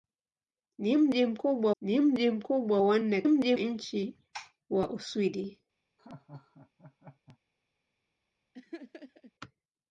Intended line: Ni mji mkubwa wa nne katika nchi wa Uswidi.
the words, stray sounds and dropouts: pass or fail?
fail